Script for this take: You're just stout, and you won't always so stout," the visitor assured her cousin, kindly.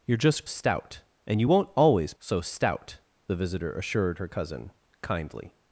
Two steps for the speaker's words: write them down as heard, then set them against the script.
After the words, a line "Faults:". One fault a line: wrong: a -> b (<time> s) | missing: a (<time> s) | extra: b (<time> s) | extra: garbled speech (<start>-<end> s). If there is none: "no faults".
You're just stout, and you won't always so stout," the visitor assured her cousin, kindly.
Faults:
no faults